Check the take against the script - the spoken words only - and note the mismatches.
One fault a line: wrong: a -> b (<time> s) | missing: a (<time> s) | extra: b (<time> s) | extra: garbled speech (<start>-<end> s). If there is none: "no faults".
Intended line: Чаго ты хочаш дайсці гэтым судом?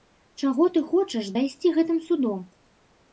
no faults